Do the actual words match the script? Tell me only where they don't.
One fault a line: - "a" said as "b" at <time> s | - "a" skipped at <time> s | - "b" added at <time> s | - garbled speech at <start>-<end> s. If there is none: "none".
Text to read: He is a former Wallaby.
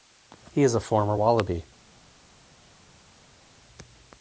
none